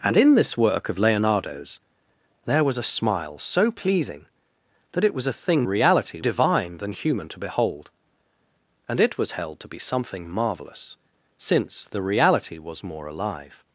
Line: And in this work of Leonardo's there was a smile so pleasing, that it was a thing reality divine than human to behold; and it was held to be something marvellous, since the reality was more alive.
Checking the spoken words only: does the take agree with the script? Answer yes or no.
yes